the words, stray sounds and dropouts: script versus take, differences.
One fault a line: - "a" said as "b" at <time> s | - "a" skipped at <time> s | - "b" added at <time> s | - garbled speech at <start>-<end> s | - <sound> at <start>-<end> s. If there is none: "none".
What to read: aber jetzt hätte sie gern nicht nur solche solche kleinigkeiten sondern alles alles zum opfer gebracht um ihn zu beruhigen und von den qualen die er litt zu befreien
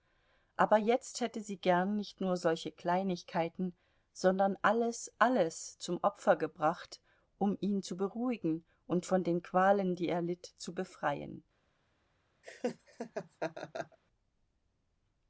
- "solche" skipped at 2.7 s
- laugh at 12.4-14.0 s